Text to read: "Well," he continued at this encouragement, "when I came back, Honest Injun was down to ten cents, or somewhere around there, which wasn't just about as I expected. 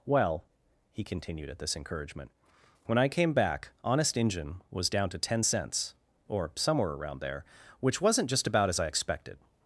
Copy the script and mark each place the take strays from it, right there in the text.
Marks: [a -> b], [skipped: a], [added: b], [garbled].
"Well," he continued at this encouragement, "when I came back, Honest Injun was down to ten cents, or somewhere around there, which wasn't just about as I expected.